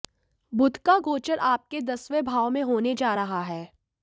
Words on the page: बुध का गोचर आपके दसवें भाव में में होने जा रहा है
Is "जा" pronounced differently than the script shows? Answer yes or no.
no